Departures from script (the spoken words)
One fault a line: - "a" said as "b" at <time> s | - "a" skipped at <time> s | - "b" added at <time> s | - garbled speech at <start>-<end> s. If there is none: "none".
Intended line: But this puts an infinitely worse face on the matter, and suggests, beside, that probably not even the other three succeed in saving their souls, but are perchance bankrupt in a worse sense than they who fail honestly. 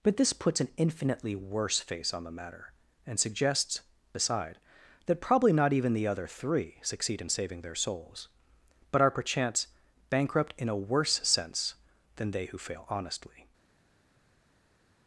none